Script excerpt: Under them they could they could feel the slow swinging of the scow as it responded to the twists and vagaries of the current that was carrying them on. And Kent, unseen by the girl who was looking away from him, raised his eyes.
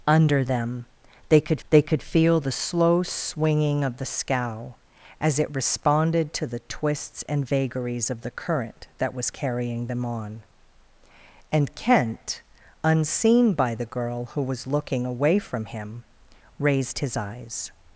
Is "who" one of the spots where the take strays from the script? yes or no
no